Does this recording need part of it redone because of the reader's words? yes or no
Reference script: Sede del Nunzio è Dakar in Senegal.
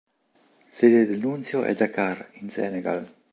no